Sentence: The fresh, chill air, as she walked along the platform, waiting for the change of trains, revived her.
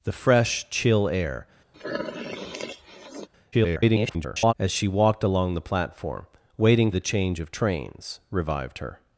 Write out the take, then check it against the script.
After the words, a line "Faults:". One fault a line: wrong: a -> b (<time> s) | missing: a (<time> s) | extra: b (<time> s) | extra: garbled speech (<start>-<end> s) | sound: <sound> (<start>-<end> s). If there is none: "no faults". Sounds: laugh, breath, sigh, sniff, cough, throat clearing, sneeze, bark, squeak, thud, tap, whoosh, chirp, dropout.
The fresh, chill air, [garbled] as she walked along the platform, waiting the change of trains, revived her.
Faults:
sound: sniff (1.7-3.3 s)
extra: garbled speech (3.5-4.5 s)
missing: for (6.9 s)